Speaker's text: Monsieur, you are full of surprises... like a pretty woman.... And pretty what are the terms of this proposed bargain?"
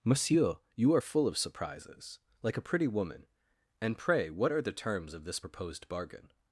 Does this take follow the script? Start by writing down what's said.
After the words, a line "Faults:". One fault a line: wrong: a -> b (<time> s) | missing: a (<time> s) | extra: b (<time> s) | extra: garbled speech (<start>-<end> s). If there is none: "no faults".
Monsieur, you are full of surprises... like a pretty woman.... And pray what are the terms of this proposed bargain?"
Faults:
wrong: pretty -> pray (4.0 s)